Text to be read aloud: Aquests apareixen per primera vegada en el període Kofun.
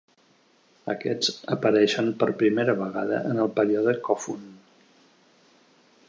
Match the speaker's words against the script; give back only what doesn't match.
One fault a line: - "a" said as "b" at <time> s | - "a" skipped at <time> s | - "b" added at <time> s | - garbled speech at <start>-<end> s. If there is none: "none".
none